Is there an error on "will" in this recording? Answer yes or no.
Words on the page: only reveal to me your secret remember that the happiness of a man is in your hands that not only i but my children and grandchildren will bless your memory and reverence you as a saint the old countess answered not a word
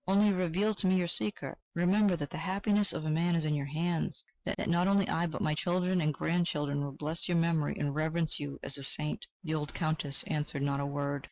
no